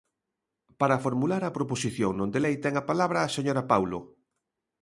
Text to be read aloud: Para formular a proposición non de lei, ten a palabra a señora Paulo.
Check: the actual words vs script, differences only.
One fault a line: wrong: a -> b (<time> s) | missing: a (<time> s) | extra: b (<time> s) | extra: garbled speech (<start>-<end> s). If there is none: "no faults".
no faults